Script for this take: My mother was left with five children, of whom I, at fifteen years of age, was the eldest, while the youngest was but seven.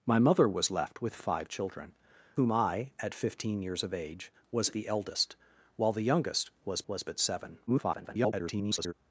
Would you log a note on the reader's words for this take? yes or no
yes